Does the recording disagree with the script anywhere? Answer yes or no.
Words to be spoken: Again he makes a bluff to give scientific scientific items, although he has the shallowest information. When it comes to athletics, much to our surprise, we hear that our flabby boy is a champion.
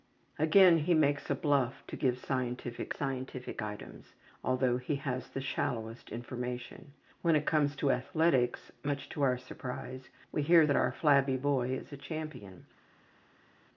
no